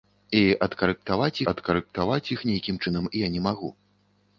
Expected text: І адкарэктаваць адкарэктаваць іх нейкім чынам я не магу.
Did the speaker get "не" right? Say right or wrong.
right